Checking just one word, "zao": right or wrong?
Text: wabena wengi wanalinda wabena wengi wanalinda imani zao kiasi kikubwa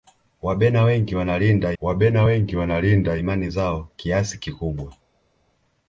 right